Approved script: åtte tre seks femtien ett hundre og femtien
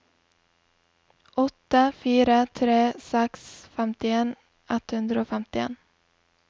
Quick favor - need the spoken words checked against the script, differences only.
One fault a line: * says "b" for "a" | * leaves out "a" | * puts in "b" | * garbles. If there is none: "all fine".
* puts in "fire"